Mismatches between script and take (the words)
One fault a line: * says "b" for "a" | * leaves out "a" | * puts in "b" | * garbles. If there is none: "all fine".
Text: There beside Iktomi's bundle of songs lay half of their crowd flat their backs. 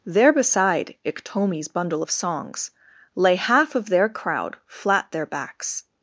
all fine